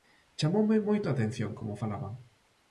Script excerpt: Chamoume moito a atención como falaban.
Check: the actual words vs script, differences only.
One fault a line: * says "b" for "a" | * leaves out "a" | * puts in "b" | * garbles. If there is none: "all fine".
all fine